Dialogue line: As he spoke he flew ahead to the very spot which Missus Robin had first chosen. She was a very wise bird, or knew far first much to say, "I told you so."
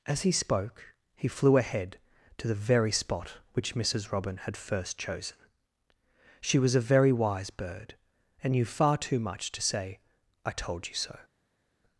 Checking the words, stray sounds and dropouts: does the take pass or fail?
fail